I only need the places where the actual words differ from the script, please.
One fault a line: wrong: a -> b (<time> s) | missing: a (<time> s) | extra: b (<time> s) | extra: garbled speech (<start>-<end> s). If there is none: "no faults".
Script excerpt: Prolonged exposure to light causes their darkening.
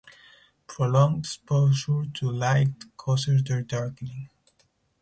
no faults